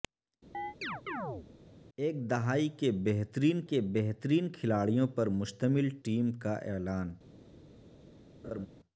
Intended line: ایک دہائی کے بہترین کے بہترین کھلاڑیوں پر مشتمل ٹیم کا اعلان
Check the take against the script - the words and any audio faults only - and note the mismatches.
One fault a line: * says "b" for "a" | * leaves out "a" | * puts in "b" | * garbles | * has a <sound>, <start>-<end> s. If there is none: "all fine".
* has a chirp, 0.5-1.5 s
* has a laugh, 8.4-8.7 s